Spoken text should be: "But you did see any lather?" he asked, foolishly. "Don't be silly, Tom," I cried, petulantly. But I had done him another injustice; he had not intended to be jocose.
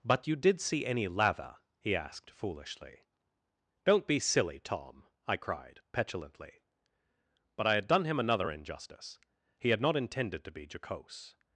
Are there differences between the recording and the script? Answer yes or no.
no